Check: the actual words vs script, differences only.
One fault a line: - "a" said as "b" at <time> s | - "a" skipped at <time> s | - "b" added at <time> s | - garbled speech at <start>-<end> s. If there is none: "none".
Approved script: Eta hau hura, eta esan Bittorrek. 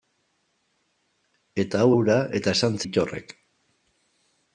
none